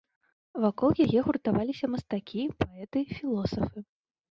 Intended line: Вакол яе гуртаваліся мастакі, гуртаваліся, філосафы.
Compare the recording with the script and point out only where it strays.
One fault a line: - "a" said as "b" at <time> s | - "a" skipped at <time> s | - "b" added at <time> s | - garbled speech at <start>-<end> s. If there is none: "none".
- "гуртаваліся" said as "паэты" at 2.6 s